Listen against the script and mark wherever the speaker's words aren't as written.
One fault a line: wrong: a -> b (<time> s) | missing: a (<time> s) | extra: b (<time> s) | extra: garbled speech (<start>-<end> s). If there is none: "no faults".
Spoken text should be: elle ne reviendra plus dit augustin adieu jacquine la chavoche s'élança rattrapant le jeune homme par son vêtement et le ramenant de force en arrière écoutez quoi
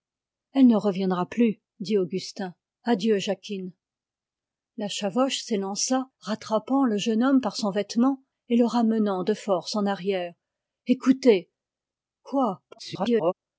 extra: garbled speech (12.7-13.3 s)